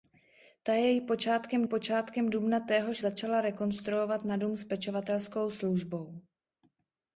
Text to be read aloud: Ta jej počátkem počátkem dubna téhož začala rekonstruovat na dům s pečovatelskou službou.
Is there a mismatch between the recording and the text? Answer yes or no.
no